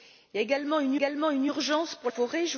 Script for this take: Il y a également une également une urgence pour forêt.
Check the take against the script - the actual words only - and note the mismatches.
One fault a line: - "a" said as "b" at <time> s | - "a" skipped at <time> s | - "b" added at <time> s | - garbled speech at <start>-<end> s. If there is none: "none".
none